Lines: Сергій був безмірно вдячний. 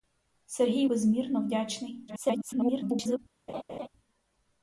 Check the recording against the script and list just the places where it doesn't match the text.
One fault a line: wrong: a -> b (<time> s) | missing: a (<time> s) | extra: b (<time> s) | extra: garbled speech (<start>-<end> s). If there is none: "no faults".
missing: був (0.9 s)
extra: garbled speech (2.1-3.2 s)